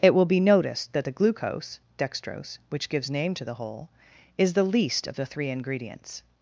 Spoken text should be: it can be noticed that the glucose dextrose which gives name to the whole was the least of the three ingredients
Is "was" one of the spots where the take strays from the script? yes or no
yes